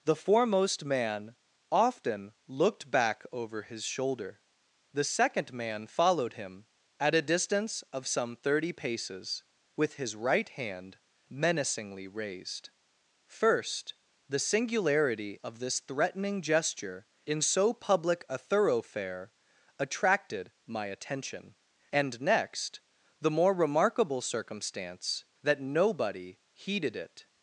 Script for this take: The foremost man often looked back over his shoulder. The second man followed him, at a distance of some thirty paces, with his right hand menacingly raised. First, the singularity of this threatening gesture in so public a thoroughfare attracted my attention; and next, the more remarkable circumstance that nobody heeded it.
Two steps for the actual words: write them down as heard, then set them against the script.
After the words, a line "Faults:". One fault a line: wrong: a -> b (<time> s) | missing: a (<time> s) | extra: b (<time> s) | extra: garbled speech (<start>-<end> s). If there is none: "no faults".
The foremost man often looked back over his shoulder. The second man followed him, at a distance of some thirty paces, with his right hand menacingly raised. First, the singularity of this threatening gesture in so public a thoroughfare attracted my attention; and next, the more remarkable circumstance that nobody heeded it.
Faults:
no faults